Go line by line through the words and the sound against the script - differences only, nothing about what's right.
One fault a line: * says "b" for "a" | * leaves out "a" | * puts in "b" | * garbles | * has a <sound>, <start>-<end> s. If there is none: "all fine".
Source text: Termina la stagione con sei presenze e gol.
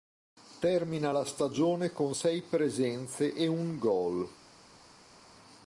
* puts in "un"